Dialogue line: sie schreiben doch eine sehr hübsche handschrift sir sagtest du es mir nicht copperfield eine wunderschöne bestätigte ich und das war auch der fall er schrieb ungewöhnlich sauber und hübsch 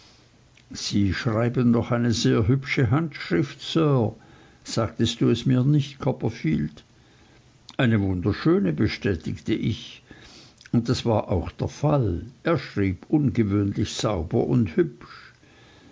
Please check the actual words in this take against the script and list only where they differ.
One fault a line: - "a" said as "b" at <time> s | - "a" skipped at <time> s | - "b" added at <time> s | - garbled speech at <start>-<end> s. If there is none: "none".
none